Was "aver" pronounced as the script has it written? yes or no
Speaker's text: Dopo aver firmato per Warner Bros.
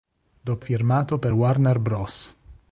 no